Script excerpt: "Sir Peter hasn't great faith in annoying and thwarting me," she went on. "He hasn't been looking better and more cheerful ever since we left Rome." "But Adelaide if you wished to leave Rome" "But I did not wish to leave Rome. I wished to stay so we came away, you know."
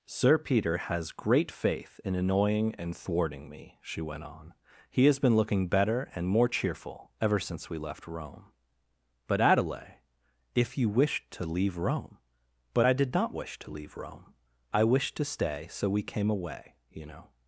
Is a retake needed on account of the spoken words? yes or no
yes